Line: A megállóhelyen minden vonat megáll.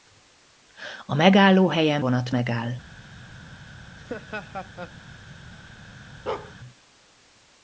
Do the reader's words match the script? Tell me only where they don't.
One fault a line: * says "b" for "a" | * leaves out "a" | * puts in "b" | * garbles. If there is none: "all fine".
* leaves out "minden"